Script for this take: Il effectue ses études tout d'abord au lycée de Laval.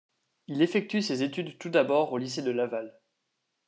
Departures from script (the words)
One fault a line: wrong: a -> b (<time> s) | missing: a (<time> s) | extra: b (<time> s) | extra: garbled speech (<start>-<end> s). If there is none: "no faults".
no faults